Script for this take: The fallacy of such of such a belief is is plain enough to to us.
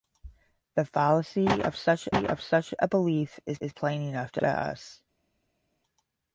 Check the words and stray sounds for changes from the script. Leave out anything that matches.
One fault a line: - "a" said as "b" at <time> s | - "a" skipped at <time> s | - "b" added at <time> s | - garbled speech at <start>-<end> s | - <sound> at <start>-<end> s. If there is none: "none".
none